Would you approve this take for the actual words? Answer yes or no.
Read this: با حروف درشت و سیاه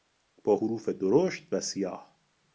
yes